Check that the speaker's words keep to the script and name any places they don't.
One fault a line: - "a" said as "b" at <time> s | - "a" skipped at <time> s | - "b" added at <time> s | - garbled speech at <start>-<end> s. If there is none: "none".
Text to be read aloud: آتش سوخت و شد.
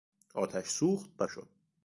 none